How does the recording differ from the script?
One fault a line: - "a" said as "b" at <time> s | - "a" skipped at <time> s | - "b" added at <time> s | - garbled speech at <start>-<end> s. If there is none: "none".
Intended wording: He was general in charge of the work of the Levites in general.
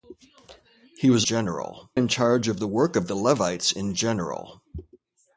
none